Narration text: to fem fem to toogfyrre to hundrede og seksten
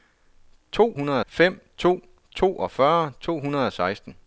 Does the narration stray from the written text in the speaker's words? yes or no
yes